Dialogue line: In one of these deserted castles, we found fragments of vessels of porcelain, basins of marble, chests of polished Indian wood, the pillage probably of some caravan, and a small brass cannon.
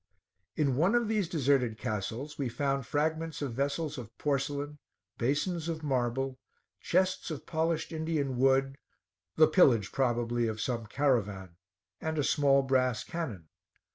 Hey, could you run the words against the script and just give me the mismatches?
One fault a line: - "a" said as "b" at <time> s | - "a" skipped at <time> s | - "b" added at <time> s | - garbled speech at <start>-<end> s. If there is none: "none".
none